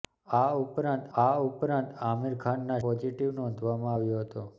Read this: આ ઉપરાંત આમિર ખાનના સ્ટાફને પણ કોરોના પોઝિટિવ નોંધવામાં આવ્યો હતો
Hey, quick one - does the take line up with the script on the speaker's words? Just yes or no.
no